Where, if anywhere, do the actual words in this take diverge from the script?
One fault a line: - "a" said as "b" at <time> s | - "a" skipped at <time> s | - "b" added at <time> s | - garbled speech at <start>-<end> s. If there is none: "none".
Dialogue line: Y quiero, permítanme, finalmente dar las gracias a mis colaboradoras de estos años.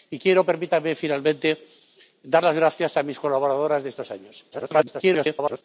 - garbled speech at 4.5-5.6 s